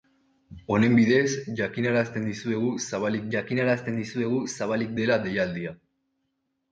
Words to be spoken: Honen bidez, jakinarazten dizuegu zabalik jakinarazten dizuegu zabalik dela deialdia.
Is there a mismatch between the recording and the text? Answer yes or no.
no